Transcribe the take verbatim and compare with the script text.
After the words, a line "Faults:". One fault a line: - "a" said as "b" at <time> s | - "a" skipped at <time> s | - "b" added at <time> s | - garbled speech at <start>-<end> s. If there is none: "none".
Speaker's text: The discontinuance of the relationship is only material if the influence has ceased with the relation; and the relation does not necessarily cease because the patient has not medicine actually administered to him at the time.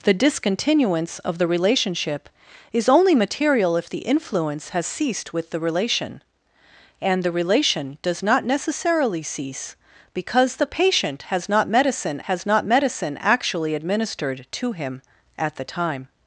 The discontinuance of the relationship is only material if the influence has ceased with the relation; and the relation does not necessarily cease because the patient has not medicine has not medicine actually administered to him at the time.
Faults:
- "has not medicine" added at 12.2 s